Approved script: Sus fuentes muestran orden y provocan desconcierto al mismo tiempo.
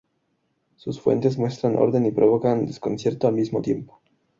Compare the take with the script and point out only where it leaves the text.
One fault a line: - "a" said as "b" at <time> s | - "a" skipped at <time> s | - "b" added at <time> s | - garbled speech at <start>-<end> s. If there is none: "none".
none